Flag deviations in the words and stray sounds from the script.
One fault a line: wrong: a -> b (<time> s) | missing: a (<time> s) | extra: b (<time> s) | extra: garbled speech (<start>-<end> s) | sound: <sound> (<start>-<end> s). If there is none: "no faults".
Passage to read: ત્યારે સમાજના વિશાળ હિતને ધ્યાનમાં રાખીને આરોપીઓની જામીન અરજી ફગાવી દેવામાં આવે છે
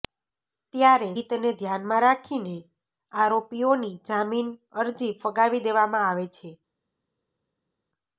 missing: સમાજના વિશાળ (1.1 s)